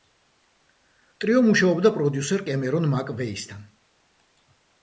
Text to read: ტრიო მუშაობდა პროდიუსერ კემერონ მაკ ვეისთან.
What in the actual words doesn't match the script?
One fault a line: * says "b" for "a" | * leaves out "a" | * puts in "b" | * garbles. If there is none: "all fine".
all fine